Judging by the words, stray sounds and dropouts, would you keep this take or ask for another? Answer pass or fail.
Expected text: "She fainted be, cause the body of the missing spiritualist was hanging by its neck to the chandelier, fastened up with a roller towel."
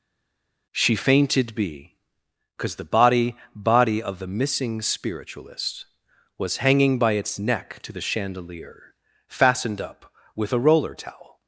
fail